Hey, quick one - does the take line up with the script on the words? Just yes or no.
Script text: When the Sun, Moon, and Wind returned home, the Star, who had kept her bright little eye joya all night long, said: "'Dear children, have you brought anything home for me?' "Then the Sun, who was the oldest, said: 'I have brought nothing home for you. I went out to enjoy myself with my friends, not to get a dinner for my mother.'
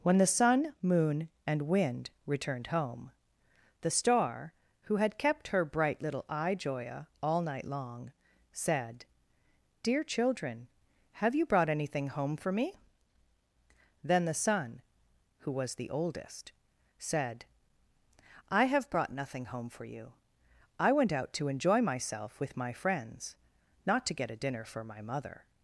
yes